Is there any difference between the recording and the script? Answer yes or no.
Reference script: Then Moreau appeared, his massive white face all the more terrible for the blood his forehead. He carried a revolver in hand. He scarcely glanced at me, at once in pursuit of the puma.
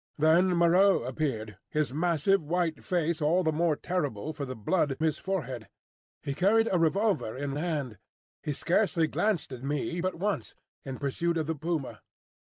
no